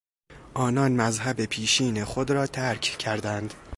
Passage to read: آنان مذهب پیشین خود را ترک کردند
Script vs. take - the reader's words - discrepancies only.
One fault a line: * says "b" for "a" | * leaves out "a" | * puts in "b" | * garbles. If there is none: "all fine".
all fine